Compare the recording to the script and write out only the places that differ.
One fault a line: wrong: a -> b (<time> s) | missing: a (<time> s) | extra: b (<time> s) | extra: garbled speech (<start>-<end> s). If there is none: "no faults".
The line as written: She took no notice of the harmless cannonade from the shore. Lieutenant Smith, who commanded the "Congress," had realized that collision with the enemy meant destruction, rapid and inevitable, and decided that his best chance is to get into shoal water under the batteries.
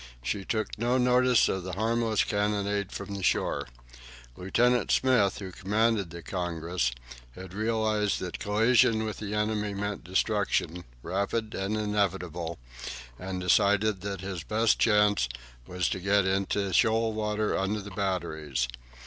wrong: is -> was (15.7 s)